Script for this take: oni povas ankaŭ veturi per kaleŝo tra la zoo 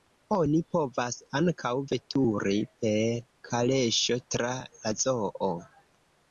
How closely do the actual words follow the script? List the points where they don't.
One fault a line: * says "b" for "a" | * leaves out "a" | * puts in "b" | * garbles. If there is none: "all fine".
all fine